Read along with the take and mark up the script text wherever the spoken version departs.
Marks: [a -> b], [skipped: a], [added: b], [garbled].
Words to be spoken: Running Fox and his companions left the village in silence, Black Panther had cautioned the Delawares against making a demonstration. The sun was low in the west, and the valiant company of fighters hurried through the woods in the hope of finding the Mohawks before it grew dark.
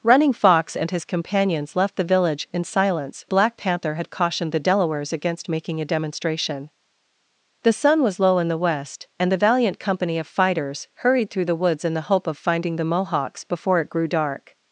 Running Fox and his companions left the village in silence, Black Panther had cautioned the Delawares against making a demonstration. The sun was low in the west, and the valiant company of fighters hurried through the woods in the hope of finding the Mohawks before it grew dark.